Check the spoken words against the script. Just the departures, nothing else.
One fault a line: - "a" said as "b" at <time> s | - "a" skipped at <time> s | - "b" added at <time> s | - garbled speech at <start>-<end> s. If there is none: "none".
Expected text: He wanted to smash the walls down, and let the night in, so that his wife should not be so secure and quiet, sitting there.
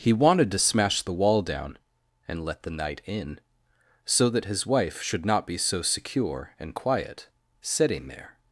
- "walls" said as "wall" at 1.1 s